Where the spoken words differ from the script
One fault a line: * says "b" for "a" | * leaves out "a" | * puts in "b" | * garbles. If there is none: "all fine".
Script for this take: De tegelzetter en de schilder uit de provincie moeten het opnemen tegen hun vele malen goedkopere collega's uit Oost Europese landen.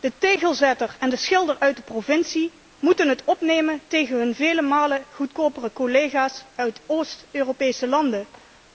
all fine